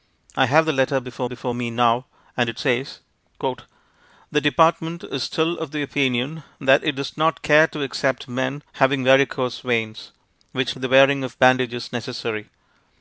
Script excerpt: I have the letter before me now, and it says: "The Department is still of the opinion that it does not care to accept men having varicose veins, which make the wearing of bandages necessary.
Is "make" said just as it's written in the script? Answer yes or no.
no